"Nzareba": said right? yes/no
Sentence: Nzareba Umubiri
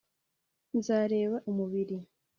yes